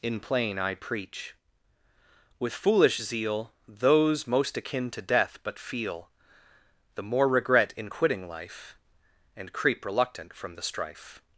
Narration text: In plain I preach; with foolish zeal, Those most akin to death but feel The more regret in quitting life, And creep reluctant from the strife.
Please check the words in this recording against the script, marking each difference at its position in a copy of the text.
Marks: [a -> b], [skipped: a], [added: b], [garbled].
In plain I preach; with foolish zeal, Those most akin to death but feel The more regret in quitting life, And creep reluctant from the strife.